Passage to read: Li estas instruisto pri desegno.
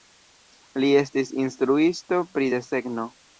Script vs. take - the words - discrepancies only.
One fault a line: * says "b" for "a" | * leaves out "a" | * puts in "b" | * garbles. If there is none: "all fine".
* says "estis" for "estas"